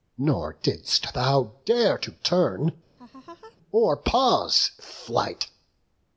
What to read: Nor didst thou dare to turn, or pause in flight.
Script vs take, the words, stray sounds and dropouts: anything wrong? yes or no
yes